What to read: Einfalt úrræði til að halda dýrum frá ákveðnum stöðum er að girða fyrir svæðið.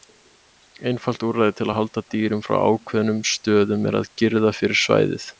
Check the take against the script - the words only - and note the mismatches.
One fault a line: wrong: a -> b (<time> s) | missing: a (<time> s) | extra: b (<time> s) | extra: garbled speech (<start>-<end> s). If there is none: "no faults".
no faults